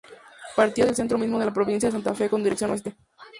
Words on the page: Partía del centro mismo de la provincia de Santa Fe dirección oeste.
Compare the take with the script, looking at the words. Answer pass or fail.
fail